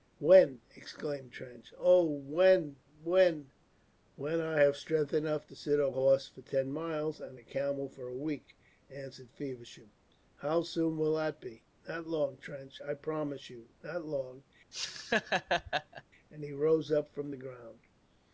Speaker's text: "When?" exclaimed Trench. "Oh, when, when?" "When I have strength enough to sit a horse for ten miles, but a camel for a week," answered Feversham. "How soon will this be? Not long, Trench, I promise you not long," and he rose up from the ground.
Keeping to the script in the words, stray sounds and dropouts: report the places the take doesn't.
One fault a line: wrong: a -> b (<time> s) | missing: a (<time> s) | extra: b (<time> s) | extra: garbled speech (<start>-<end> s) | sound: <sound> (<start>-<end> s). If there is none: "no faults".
wrong: but -> and (7.2 s)
wrong: this -> that (11.2 s)
sound: laugh (14.7-16.0 s)